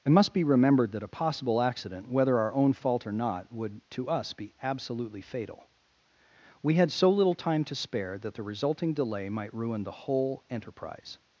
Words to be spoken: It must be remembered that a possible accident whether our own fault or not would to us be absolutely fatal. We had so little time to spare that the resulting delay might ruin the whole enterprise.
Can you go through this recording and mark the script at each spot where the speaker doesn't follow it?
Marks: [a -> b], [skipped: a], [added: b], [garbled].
It must be remembered that a possible accident whether our own fault or not would to us be absolutely fatal. We had so little time to spare that the resulting delay might ruin the whole enterprise.